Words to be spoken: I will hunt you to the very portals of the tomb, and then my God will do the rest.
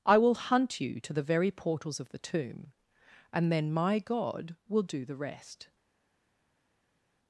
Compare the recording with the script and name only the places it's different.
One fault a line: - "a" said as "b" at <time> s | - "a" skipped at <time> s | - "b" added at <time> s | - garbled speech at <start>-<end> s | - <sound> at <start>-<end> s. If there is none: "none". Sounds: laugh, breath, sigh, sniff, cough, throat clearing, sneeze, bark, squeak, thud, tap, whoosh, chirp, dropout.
none